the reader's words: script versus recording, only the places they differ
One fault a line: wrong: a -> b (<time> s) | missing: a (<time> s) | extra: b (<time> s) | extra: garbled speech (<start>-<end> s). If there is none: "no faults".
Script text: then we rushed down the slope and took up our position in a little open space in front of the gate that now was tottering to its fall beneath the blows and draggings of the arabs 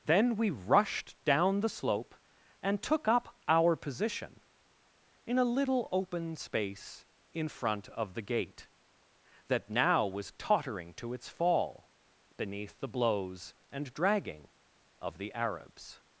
wrong: draggings -> dragging (13.9 s)